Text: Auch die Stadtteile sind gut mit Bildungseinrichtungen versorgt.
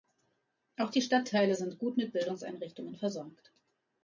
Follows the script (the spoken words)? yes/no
yes